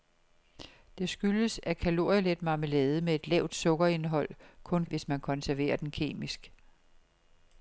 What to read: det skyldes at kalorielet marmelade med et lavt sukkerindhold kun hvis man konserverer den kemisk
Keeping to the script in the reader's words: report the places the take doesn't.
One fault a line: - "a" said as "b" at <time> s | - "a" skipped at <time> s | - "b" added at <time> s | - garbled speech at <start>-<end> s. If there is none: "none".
none